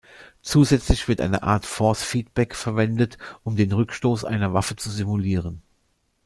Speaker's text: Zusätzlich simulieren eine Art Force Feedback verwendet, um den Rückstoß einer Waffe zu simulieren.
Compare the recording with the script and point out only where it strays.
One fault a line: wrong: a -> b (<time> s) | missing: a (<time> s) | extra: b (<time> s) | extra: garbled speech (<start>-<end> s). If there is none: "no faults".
wrong: simulieren -> wird (1.1 s)